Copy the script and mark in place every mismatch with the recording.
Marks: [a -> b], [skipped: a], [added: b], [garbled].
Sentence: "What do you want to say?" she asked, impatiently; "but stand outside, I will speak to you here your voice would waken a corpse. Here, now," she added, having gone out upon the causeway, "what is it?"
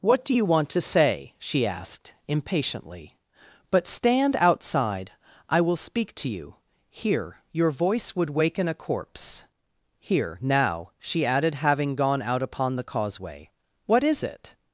"What do you want to say?" she asked, impatiently; "but stand outside, I will speak to you here your voice would waken a corpse. Here, now," she added, having gone out upon the causeway, "what is it?"